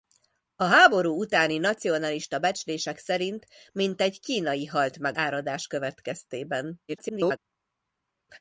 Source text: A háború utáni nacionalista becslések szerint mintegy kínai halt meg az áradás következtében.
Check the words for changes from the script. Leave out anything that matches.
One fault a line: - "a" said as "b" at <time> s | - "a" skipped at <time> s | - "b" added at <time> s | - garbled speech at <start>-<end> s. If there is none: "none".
- "az" skipped at 5.2 s
- garbled speech at 6.9-7.4 s